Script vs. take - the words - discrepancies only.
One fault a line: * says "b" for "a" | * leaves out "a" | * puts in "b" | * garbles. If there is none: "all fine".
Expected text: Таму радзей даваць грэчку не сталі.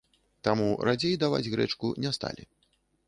all fine